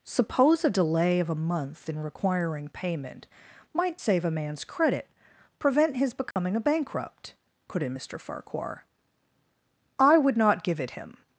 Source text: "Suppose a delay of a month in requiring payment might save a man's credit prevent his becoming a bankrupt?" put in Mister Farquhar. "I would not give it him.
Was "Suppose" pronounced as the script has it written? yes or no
yes